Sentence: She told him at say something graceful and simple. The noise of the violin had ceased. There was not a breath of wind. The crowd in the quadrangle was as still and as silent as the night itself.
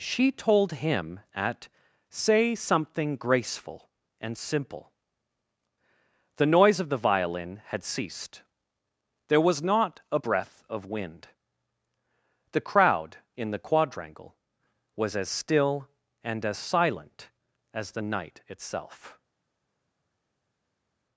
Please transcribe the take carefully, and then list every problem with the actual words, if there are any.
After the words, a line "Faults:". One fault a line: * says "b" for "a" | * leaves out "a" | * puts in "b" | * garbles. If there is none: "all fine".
She told him at say something graceful and simple. The noise of the violin had ceased. There was not a breath of wind. The crowd in the quadrangle was as still and as silent as the night itself.
Faults:
all fine